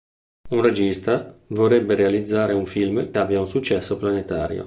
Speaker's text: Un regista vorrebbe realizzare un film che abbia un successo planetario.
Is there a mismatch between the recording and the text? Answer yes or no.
yes